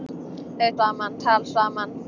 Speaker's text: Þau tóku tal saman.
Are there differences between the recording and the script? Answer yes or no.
yes